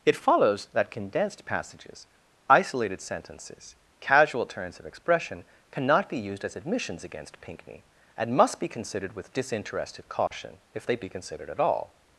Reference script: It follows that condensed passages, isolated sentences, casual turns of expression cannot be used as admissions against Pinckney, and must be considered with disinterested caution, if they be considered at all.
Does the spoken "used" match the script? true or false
true